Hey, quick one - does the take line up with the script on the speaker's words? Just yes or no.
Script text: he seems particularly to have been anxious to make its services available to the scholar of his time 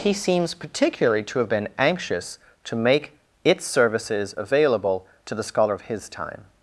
yes